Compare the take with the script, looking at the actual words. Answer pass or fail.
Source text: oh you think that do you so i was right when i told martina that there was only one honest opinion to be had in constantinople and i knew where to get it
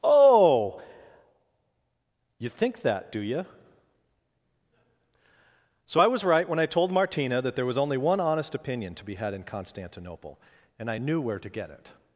pass